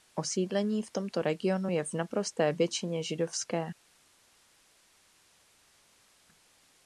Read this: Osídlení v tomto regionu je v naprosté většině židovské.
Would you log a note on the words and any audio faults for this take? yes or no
no